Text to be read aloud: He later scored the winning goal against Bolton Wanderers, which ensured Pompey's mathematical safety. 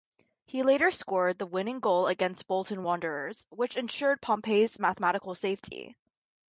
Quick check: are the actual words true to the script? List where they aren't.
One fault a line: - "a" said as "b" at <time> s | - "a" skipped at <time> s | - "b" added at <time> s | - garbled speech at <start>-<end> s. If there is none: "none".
none